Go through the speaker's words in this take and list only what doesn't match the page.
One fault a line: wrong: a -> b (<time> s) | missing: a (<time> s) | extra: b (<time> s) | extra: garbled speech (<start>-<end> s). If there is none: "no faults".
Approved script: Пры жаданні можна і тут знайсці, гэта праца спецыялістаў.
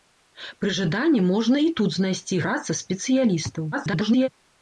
missing: гэта (2.4 s)
extra: garbled speech (3.7-4.3 s)